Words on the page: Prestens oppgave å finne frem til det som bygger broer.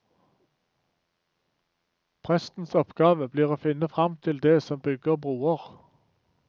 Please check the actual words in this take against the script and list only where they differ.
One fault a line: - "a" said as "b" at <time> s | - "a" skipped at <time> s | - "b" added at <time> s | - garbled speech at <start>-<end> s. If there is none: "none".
- "blir" added at 3.3 s